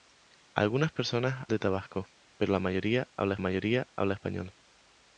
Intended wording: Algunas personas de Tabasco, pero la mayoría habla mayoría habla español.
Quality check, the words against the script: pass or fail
pass